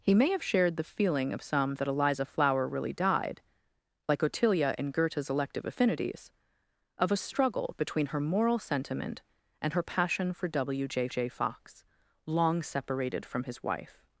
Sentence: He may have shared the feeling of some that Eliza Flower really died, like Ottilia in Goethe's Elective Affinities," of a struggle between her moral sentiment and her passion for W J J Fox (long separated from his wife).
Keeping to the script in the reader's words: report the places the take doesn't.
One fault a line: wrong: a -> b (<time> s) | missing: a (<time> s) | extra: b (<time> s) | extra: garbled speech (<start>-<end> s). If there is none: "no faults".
no faults